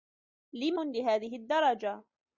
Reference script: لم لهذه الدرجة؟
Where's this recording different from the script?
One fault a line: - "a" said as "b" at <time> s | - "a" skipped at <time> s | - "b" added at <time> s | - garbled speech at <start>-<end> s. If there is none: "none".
none